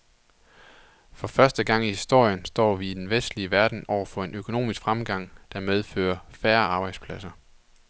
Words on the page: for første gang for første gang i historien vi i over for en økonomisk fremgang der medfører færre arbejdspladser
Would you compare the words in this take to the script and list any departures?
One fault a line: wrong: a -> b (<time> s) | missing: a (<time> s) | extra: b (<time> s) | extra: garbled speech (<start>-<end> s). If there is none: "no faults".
wrong: for første gang -> i historien står vi (1.9 s)
wrong: historien vi i -> den vestlige verden (2.9 s)